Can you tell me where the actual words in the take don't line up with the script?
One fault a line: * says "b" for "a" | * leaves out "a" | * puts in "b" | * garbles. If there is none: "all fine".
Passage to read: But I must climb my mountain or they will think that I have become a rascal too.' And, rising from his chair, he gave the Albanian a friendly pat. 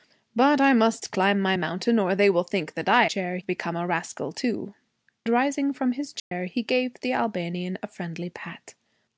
* says "chair" for "have"
* leaves out "And"